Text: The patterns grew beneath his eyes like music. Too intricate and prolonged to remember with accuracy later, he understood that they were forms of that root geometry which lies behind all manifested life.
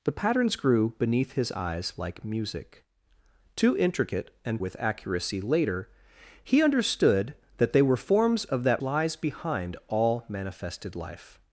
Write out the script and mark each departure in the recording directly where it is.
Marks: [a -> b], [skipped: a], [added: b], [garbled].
The patterns grew beneath his eyes like music. Too intricate and [skipped: prolonged to remember] with accuracy later, he understood that they were forms of that [skipped: root geometry which] lies behind all manifested life.